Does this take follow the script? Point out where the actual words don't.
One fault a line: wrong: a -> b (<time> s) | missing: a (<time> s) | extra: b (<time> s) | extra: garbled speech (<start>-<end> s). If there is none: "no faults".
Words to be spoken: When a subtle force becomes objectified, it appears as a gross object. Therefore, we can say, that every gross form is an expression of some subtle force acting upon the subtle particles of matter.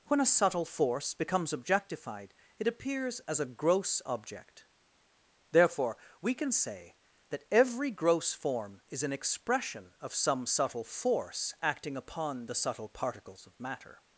no faults